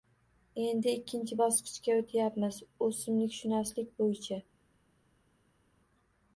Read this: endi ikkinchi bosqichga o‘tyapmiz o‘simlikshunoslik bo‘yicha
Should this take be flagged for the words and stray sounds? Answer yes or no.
no